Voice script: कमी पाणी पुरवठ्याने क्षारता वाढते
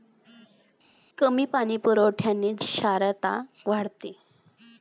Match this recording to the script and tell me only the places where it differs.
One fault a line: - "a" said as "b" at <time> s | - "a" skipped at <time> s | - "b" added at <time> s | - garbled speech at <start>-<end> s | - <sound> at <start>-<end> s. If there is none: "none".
none